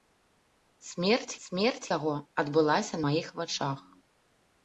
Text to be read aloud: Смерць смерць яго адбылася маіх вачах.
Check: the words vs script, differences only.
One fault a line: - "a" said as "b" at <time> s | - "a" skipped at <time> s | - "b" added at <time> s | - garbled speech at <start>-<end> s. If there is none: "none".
none